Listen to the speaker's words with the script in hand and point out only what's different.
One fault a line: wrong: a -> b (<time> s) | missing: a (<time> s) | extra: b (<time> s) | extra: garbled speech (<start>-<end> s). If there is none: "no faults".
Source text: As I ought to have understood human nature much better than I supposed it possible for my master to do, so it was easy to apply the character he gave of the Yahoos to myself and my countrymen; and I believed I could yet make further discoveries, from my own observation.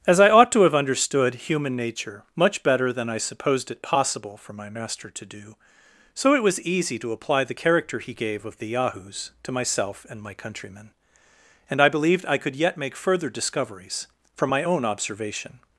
no faults